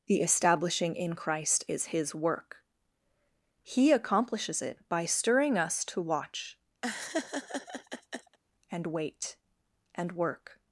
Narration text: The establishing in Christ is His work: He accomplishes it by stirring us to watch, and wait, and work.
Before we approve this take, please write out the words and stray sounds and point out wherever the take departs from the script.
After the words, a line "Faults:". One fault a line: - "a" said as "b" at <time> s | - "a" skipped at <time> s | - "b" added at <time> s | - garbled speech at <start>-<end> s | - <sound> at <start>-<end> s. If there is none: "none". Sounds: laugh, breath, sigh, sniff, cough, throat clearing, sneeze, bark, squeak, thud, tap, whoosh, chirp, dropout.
The establishing in Christ is His work: He accomplishes it by stirring us to watch, and wait, and work.
Faults:
- laugh at 6.8-8.4 s